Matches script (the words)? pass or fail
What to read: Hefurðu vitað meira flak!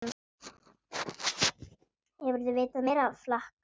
pass